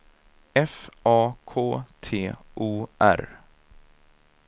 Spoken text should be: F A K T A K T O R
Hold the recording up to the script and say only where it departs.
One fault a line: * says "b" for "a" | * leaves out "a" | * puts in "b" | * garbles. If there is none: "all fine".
* leaves out "A K T"